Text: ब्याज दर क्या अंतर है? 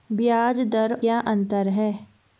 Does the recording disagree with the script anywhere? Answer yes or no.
no